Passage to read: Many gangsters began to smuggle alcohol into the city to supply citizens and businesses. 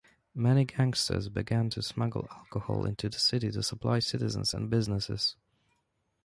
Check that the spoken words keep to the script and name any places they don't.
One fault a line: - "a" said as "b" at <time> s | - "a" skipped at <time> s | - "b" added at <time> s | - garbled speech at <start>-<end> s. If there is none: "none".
none